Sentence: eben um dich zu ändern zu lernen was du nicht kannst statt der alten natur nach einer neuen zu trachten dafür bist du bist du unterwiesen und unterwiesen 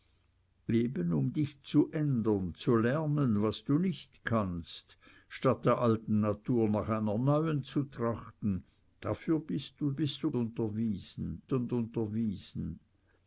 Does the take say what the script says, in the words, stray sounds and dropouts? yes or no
yes